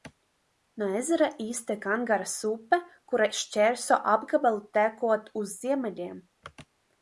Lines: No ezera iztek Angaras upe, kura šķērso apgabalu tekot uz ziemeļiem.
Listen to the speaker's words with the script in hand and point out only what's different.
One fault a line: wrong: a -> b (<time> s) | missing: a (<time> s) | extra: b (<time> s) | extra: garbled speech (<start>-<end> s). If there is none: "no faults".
no faults